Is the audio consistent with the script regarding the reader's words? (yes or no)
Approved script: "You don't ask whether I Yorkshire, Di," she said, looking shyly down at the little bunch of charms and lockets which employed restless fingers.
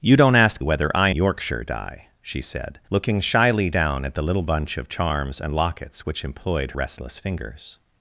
yes